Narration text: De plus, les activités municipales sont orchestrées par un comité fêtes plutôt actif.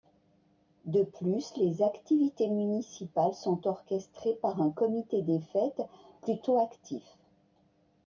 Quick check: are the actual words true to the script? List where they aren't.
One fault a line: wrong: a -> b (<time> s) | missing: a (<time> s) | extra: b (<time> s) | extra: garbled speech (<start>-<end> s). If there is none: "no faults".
extra: des (5.2 s)